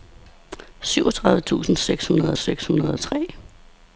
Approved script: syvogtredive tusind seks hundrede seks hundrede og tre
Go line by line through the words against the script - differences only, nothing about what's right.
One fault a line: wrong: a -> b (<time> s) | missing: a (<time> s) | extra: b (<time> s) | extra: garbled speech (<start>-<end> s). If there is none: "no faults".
no faults